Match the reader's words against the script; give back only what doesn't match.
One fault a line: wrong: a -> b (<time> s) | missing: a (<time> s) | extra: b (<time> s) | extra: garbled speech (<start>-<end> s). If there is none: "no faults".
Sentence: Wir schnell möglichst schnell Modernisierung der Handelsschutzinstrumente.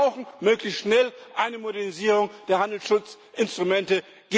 wrong: schnell -> brauchen (0.1 s)
extra: eine (1.4 s)